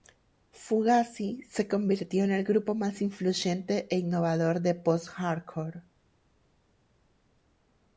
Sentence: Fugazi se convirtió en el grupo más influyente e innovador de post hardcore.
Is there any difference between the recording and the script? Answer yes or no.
no